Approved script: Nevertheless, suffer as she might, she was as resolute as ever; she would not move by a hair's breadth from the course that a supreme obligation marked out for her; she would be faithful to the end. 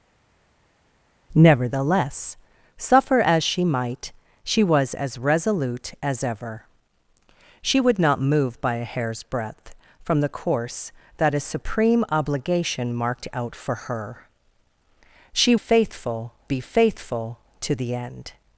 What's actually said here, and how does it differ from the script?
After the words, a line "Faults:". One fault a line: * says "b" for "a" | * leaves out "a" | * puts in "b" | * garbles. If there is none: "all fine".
Nevertheless, suffer as she might, she was as resolute as ever; she would not move by a hair's breadth from the course that a supreme obligation marked out for her; she faithful be faithful to the end.
Faults:
* says "faithful" for "would"